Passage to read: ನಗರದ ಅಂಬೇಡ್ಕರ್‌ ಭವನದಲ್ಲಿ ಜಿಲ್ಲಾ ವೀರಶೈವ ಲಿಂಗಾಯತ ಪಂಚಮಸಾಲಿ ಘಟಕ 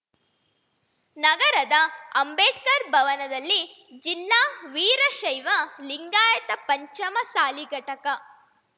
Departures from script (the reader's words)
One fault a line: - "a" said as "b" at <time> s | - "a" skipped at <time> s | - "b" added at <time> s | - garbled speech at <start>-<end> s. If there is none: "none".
none